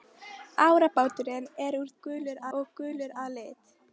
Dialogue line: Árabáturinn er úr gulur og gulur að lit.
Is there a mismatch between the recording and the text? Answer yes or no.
no